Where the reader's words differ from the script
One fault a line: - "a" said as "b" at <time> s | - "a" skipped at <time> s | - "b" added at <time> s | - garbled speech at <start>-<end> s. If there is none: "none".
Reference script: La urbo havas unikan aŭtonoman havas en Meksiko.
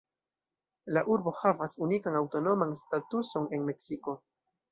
- "havas" said as "statuson" at 2.8 s